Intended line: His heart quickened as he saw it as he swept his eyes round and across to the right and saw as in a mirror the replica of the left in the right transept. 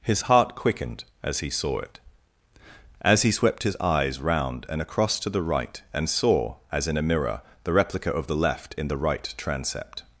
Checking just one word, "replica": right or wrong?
right